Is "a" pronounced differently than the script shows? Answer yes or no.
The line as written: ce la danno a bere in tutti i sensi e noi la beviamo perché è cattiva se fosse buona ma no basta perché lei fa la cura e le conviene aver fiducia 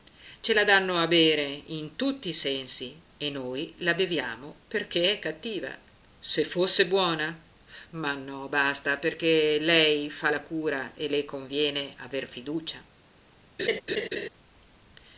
no